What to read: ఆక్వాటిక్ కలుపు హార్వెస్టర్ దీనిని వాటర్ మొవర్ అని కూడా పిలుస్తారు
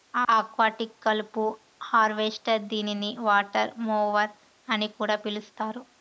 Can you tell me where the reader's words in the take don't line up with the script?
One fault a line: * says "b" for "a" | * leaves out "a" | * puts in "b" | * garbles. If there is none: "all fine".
all fine